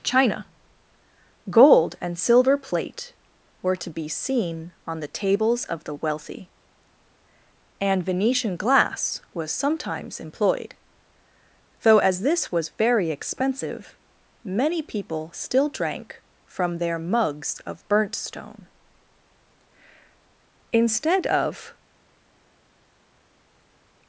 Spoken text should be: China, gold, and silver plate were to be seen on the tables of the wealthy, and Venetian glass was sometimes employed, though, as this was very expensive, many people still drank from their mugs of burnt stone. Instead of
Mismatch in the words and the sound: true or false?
false